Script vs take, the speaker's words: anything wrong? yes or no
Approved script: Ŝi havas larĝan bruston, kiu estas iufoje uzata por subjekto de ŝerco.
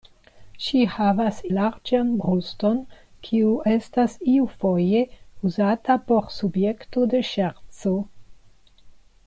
no